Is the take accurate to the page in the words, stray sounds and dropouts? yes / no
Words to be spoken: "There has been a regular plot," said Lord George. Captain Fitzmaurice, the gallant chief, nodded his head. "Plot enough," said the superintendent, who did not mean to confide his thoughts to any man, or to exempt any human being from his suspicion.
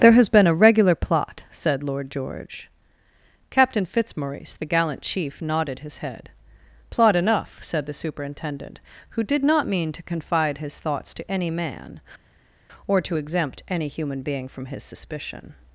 yes